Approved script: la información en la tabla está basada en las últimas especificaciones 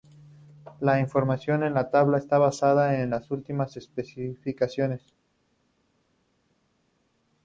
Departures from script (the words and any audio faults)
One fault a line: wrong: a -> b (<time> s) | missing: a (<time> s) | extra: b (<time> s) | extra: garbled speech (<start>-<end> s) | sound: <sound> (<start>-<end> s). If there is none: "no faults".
no faults